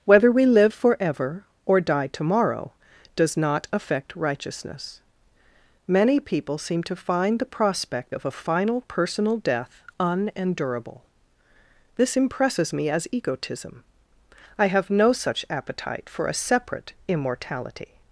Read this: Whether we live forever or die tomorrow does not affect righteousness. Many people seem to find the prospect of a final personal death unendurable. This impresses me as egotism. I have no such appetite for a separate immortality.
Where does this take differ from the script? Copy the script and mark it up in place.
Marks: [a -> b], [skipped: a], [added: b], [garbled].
Whether we live forever or die tomorrow does not affect righteousness. Many people seem to find the prospect of a final personal death unendurable. This impresses me as egotism. I have no such appetite for a separate immortality.